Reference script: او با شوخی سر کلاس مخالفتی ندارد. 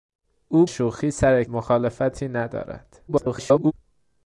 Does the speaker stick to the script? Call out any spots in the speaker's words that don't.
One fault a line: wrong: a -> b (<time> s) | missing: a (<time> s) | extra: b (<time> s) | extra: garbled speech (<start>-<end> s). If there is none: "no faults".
missing: با (0.7 s)
missing: کلاس (1.4 s)
extra: garbled speech (3.1-3.7 s)